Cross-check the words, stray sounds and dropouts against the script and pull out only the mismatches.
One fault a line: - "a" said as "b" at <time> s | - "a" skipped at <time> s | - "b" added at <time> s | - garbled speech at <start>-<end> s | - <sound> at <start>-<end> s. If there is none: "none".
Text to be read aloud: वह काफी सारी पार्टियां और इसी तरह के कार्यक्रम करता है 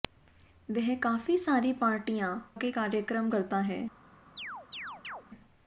- "और इसी तरह" skipped at 2.3 s
- chirp at 4.4-5.2 s